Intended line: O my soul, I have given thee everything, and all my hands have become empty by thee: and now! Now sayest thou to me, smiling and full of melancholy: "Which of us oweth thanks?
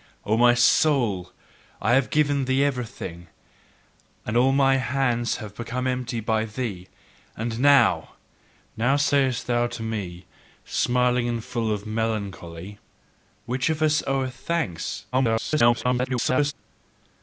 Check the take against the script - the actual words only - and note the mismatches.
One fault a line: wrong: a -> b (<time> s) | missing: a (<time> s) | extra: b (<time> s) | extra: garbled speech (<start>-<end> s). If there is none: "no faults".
extra: garbled speech (15.1-16.5 s)